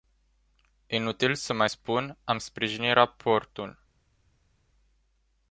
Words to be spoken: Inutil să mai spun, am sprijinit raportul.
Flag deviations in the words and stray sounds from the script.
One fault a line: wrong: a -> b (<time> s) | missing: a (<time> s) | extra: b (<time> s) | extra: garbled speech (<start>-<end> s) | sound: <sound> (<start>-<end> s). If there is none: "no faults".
no faults